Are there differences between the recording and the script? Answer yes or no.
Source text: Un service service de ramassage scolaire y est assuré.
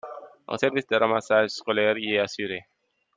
yes